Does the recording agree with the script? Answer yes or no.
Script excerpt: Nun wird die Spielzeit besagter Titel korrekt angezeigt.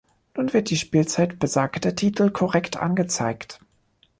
yes